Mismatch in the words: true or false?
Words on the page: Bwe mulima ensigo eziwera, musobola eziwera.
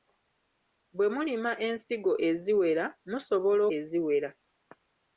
false